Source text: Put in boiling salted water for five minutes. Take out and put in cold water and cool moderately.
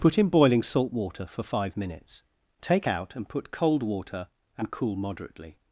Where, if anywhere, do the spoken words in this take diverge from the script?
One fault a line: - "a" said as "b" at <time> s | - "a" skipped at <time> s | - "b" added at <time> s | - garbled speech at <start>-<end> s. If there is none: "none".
- "salted" said as "salt" at 0.6 s
- "in" skipped at 3.5 s